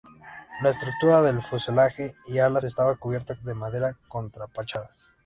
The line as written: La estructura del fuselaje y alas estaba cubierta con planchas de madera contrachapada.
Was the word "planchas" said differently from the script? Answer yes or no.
yes